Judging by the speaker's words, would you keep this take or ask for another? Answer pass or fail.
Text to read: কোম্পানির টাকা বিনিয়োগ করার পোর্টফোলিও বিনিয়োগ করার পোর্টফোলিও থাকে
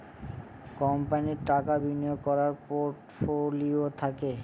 fail